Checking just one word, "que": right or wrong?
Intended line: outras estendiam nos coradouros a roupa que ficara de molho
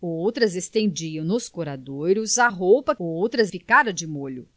wrong